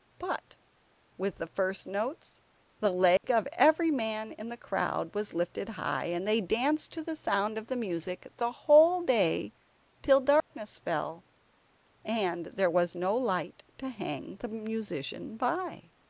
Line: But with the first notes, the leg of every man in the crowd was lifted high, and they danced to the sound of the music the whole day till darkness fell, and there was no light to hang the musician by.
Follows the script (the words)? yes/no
yes